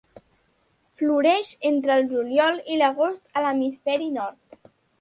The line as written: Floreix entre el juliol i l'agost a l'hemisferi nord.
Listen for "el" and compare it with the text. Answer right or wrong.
right